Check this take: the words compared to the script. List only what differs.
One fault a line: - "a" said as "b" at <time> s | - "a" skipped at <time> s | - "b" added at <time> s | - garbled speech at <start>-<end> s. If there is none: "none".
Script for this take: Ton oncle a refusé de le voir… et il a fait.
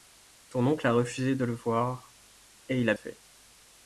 none